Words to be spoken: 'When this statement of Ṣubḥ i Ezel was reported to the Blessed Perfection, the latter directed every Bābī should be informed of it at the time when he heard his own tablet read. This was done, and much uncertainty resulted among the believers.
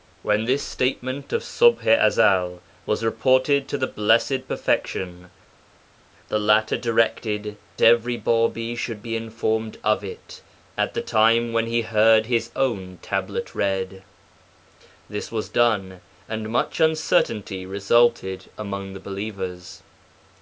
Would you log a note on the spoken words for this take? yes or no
no